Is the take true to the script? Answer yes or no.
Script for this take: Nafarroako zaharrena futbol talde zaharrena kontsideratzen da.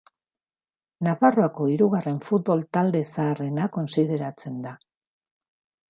no